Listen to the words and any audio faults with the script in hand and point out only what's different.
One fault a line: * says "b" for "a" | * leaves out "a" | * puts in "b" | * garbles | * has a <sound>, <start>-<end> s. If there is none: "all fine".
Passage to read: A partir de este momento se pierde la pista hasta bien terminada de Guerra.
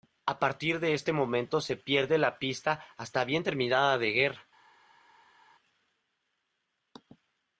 all fine